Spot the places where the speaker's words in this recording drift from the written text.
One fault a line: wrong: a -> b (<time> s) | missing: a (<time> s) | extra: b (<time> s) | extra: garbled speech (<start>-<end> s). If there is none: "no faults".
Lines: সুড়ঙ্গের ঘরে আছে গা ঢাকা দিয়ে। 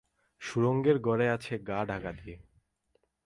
no faults